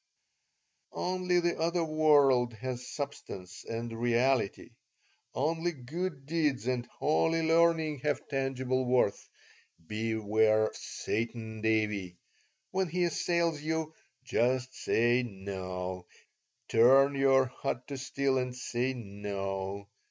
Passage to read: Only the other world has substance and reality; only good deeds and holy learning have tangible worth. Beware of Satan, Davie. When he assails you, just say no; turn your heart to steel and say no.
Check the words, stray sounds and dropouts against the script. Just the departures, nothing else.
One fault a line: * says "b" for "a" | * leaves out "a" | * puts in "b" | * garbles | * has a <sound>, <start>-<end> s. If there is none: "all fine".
* leaves out "of"